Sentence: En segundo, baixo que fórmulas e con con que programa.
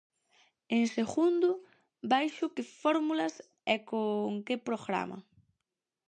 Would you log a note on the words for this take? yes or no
yes